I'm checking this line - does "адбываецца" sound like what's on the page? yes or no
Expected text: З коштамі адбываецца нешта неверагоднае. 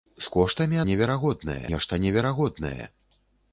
no